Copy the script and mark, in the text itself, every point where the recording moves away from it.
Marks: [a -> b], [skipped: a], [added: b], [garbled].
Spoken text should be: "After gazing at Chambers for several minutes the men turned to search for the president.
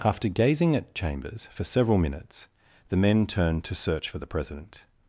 "After gazing at Chambers for several minutes the men turned to search for the president.